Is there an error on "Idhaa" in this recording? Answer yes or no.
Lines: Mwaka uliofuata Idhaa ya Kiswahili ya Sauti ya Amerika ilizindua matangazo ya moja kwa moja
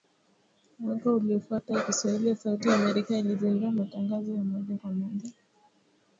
yes